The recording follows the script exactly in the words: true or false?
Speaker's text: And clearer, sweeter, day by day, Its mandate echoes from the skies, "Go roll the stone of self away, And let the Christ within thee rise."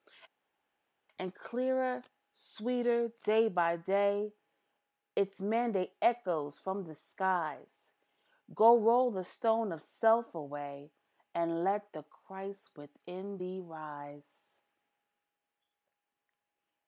true